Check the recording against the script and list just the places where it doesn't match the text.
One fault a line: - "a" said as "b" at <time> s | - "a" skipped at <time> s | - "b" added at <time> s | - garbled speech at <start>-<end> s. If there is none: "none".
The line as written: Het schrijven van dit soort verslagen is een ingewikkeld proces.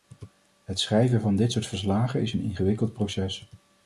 none